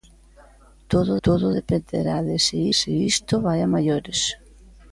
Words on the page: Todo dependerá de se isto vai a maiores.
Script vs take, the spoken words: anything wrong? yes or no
yes